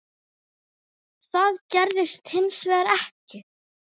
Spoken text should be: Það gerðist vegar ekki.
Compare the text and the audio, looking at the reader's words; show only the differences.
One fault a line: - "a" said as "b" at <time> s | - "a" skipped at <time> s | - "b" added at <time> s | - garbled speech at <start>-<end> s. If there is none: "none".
- "hins" added at 2.3 s